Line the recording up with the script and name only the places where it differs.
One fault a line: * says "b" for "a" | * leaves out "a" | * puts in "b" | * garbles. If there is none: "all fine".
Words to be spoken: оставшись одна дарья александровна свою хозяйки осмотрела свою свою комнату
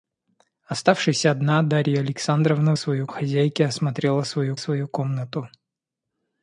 all fine